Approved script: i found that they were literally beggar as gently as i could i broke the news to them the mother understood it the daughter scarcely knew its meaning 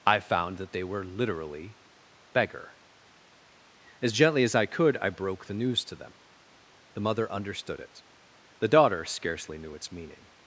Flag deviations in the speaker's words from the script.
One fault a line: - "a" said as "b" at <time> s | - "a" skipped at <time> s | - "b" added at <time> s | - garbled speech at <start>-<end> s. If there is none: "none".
none